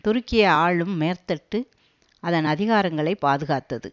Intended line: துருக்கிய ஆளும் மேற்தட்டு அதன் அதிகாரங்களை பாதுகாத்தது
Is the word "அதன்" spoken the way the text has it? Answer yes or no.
yes